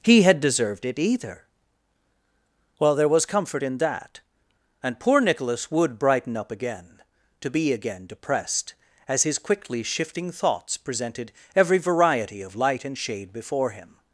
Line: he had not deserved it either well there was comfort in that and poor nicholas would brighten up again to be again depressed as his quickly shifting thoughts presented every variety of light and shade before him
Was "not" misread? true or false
true